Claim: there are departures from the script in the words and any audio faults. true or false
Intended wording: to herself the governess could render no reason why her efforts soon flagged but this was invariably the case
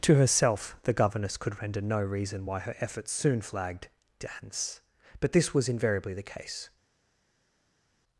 true